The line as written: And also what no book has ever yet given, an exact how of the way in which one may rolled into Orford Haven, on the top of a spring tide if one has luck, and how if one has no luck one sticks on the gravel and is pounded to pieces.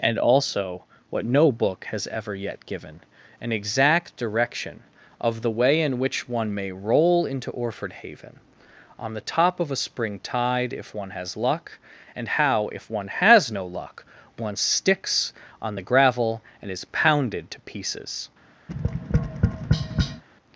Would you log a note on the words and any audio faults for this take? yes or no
yes